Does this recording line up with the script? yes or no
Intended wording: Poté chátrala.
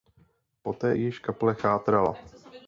no